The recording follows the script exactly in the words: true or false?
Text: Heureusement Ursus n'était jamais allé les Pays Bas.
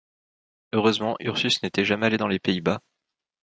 false